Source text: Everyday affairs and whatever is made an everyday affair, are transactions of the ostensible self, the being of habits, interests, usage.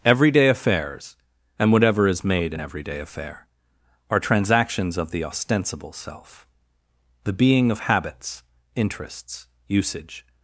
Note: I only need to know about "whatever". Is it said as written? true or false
true